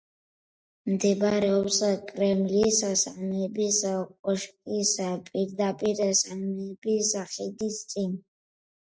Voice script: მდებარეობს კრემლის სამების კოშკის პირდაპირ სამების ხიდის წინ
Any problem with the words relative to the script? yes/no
no